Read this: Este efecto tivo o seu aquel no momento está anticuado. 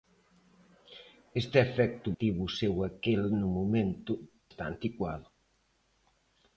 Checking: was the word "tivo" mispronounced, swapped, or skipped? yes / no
no